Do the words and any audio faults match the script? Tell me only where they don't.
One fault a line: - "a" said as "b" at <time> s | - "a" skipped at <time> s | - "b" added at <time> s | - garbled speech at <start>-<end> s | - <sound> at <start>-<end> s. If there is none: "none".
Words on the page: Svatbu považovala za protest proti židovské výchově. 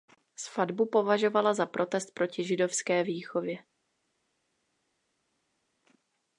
none